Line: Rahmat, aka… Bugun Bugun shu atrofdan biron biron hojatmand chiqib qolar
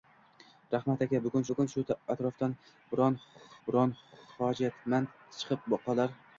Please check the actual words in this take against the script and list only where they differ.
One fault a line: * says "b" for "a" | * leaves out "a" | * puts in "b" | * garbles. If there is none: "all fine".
all fine